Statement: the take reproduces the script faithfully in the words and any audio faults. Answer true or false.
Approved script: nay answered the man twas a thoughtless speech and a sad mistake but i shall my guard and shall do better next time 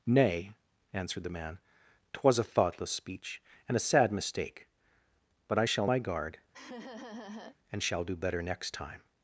false